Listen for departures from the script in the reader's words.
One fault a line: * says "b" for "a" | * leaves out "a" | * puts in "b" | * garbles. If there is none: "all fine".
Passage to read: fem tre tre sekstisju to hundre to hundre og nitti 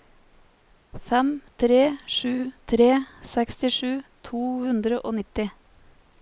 * puts in "sju"
* leaves out "to hundre"